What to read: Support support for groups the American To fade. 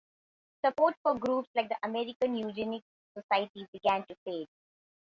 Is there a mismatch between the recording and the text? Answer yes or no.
yes